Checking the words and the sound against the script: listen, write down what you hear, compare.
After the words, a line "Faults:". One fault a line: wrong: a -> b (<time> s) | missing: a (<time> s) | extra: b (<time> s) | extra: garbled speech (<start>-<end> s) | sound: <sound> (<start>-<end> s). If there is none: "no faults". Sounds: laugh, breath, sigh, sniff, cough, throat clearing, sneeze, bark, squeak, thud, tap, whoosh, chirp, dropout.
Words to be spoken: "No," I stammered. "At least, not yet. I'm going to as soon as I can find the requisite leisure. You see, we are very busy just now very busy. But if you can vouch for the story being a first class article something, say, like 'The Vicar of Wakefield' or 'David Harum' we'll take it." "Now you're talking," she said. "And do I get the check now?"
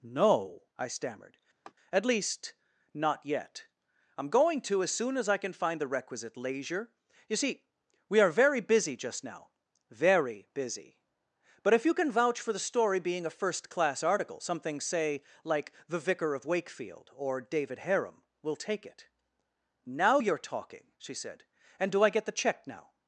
"No," I stammered. "At least, not yet. I'm going to as soon as I can find the requisite leisure. You see, we are very busy just now very busy. But if you can vouch for the story being a first class article something, say, like 'The Vicar of Wakefield' or 'David Harum' we'll take it." "Now you're talking," she said. "And do I get the check now?"
Faults:
sound: laugh (1.6-1.7 s)